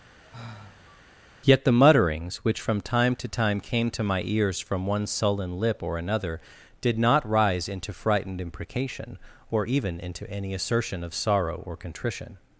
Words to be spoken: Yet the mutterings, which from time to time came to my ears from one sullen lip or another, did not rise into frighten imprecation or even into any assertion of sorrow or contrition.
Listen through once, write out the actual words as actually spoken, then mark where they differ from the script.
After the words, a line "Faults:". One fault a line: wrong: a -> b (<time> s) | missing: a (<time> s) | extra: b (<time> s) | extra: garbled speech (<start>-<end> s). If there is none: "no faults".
Yet the mutterings, which from time to time came to my ears from one sullen lip or another, did not rise into frightened imprecation or even into any assertion of sorrow or contrition.
Faults:
wrong: frighten -> frightened (7.9 s)